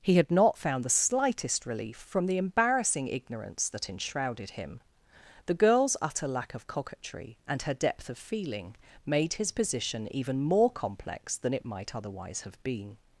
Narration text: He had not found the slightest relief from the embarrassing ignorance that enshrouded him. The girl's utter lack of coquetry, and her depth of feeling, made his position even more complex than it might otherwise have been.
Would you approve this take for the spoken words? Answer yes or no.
yes